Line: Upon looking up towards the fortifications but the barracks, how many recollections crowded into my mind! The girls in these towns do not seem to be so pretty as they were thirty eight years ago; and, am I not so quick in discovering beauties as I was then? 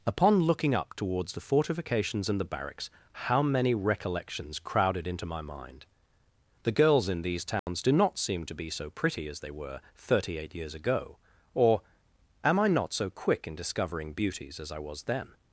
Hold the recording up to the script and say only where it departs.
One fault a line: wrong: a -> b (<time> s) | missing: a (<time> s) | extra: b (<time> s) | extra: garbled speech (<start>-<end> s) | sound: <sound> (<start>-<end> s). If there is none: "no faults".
wrong: but -> and (2.3 s)
sound: dropout (7.6-7.7 s)
wrong: and -> or (11.5 s)